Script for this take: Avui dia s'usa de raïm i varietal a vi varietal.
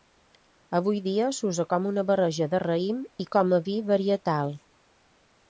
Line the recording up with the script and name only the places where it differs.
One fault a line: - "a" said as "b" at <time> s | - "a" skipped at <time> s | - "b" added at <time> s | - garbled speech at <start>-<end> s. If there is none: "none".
- "com una barreja" added at 1.7 s
- "varietal" said as "com" at 3.4 s